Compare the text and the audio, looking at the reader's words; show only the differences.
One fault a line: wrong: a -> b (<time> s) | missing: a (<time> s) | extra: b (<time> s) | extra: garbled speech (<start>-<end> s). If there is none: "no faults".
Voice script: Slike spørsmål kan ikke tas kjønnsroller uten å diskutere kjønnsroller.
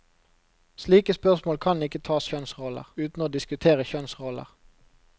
no faults